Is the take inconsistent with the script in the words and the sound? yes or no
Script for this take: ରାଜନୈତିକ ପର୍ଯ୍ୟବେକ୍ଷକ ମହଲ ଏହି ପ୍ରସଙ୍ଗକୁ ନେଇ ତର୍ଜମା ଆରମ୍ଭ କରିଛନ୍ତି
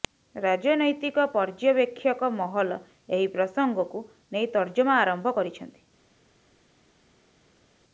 no